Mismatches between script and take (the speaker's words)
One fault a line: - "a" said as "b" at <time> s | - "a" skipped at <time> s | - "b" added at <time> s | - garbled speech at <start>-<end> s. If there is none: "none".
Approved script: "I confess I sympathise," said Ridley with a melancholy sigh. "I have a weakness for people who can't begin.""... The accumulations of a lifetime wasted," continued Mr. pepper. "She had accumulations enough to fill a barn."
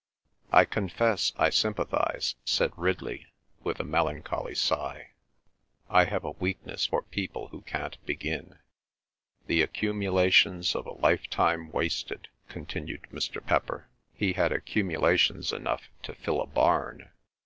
- "She" said as "He" at 14.1 s